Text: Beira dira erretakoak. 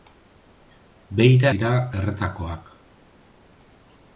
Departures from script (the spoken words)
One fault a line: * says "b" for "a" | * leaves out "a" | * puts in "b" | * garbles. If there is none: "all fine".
all fine